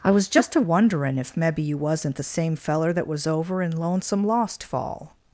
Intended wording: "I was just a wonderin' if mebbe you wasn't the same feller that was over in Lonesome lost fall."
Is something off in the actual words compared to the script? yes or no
no